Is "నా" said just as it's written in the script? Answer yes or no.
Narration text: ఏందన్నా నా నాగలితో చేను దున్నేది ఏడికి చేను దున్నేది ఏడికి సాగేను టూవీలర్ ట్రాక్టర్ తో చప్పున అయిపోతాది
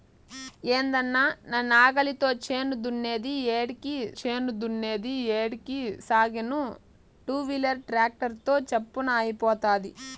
yes